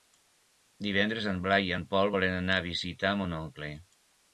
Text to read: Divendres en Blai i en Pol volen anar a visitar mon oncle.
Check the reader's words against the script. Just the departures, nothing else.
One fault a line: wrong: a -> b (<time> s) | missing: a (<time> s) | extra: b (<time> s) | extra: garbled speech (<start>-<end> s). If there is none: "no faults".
no faults